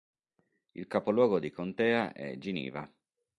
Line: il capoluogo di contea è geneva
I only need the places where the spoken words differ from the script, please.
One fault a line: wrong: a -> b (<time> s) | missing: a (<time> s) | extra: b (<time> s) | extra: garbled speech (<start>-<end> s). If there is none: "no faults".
no faults